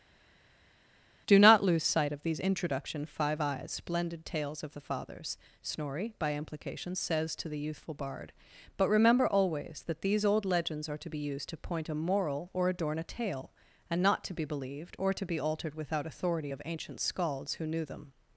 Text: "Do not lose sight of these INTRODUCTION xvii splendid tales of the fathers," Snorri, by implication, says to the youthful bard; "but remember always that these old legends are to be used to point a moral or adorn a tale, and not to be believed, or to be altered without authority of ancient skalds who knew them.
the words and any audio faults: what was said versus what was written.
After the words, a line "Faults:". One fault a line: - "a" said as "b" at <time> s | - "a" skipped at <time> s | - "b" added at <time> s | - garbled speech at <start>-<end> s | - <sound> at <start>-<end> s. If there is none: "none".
"Do not lose sight of these INTRODUCTION five eyes splendid tales of the fathers," Snorri, by implication, says to the youthful bard; "but remember always that these old legends are to be used to point a moral or adorn a tale, and not to be believed, or to be altered without authority of ancient skalds who knew them.
Faults:
- "xvii" said as "five eyes" at 3.0 s